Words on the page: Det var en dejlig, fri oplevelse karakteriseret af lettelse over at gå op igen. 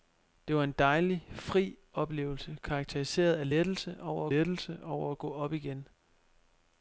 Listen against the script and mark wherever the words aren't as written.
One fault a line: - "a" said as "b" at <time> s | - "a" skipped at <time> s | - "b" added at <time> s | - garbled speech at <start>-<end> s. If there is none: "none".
- "lettelse over" added at 4.3 s